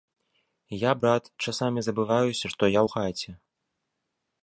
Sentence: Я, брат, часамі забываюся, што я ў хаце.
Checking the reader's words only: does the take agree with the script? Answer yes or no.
yes